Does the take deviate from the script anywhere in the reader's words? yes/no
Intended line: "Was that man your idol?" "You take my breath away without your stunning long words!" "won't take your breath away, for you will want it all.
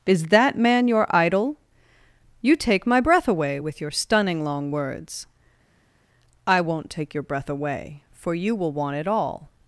yes